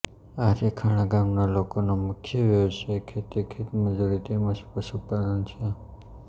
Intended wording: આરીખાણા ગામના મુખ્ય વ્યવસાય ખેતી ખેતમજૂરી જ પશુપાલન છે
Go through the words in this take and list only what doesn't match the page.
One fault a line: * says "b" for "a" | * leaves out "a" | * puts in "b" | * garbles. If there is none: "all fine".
* puts in "લોકોનો"
* puts in "તેમ"